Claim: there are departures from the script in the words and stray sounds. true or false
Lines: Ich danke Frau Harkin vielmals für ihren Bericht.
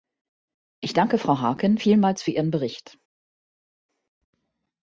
false